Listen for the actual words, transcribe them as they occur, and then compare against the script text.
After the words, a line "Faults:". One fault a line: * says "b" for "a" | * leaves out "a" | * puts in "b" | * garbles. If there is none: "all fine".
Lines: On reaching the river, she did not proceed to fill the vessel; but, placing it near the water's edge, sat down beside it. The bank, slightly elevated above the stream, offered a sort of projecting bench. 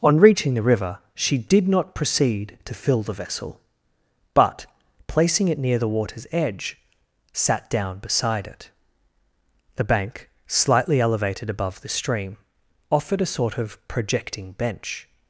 On reaching the river, she did not proceed to fill the vessel; but, placing it near the water's edge, sat down beside it. The bank, slightly elevated above the stream, offered a sort of projecting bench.
Faults:
all fine